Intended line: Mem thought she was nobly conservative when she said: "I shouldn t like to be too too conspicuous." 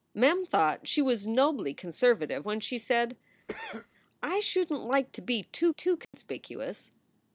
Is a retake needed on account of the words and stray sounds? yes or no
yes